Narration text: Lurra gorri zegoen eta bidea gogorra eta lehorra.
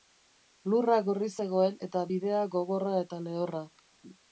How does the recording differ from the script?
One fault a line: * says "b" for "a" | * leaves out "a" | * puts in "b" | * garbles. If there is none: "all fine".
all fine